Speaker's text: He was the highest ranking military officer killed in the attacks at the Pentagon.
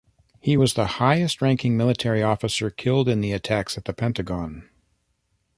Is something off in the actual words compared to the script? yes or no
no